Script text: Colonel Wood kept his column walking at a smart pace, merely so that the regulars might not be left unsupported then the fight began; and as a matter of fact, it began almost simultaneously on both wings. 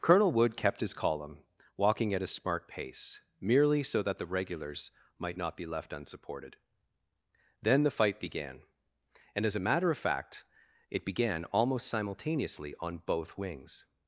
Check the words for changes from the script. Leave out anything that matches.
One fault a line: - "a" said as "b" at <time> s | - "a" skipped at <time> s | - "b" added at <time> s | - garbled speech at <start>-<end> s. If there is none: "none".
none